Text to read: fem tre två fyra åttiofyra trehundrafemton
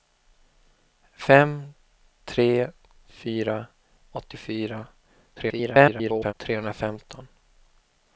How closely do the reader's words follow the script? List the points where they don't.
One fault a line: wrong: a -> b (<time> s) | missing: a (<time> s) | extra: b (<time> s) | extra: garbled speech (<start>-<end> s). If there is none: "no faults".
missing: två (2.7 s)
extra: garbled speech (5.4-6.3 s)